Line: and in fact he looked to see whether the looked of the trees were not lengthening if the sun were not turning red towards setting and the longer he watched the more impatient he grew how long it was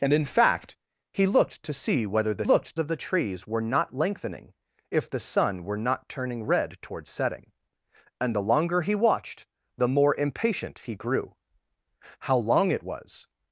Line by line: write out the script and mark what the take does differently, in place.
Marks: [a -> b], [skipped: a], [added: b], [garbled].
and in fact he looked to see whether the looked of the trees were not lengthening if the sun were not turning red towards setting and the longer he watched the more impatient he grew how long it was